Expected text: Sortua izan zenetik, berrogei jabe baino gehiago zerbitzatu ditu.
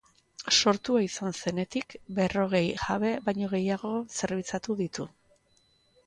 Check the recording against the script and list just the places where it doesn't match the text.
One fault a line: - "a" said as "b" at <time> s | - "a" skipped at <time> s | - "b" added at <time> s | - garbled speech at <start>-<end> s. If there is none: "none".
none